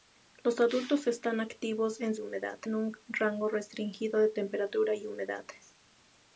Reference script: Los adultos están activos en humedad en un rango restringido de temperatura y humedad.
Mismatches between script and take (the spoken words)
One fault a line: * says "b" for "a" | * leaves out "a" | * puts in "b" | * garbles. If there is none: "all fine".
all fine